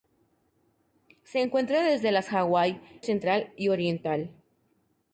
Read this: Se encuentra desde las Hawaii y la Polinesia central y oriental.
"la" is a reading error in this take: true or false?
true